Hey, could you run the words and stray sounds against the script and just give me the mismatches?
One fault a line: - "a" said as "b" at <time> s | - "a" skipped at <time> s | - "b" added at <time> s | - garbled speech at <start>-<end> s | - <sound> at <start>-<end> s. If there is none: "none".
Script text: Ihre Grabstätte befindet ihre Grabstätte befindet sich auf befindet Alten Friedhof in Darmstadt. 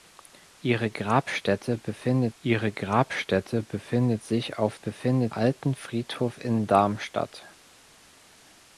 none